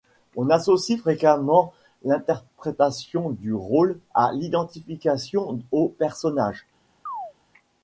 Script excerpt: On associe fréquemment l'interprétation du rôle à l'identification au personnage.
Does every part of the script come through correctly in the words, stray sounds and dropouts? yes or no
no